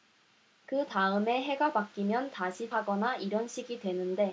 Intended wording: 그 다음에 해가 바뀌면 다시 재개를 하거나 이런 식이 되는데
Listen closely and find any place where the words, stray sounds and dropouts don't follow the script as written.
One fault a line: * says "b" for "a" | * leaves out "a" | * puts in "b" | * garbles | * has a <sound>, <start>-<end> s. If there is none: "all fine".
* leaves out "재개를"